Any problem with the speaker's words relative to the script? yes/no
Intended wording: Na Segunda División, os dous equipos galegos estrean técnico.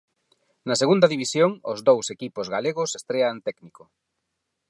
no